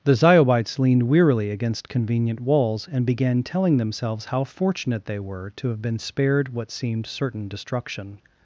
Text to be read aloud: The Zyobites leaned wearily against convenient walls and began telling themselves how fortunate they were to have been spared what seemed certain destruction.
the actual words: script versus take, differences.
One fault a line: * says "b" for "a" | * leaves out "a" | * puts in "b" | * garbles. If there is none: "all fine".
all fine